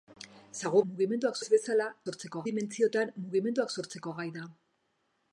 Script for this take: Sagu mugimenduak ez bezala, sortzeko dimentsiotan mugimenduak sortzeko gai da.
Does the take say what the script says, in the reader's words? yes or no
yes